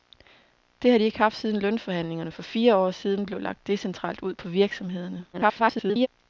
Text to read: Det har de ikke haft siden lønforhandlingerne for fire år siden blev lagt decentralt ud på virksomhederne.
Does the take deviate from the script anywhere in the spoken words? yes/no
yes